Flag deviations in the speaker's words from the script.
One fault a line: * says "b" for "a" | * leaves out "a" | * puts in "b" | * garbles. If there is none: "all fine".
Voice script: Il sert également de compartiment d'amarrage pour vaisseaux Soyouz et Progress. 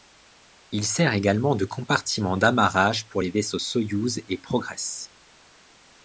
* puts in "les"